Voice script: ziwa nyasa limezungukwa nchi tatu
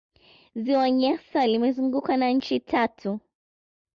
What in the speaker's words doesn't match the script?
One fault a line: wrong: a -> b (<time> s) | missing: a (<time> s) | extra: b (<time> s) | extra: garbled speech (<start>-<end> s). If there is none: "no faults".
extra: na (2.2 s)